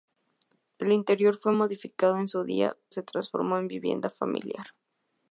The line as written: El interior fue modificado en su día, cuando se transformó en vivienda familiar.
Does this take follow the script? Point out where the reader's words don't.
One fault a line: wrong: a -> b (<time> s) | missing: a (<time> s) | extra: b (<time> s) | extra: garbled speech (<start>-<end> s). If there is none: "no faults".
missing: cuando (2.8 s)